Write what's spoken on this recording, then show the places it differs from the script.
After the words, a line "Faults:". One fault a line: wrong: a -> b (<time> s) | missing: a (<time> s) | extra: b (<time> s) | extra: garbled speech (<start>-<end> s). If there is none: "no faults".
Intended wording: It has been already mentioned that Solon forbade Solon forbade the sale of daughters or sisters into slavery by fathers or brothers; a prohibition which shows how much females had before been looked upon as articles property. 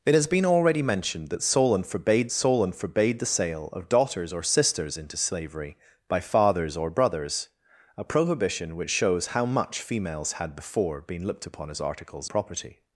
It has been already mentioned that Solon forbade Solon forbade the sale of daughters or sisters into slavery by fathers or brothers; a prohibition which shows how much females had before been looked upon as articles property.
Faults:
no faults